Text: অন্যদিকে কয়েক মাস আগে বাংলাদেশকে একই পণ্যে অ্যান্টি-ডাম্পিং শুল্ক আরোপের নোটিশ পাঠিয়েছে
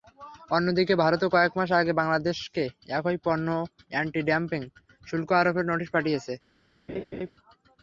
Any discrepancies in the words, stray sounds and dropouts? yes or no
yes